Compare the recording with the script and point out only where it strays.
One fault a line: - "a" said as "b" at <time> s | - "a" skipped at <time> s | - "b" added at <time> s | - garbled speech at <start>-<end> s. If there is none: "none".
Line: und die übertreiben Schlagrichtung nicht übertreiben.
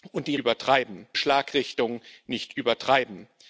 none